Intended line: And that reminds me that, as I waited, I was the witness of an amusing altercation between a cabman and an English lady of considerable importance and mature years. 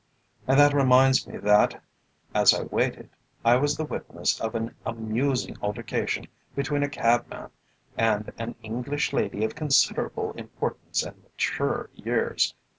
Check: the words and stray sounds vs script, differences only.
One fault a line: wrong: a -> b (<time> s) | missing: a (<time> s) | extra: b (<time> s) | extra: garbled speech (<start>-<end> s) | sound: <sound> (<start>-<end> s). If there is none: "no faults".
no faults